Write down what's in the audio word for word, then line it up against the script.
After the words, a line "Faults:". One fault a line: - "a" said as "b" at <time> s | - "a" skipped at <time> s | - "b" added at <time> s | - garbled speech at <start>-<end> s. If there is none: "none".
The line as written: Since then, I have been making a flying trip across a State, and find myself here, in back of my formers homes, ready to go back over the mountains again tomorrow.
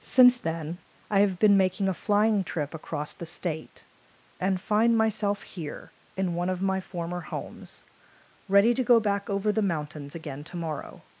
Since then, I have been making a flying trip across the State, and find myself here, in one of my former homes, ready to go back over the mountains again tomorrow.
Faults:
- "a" said as "the" at 3.1 s
- "back" said as "one" at 6.3 s
- "formers" said as "former" at 6.8 s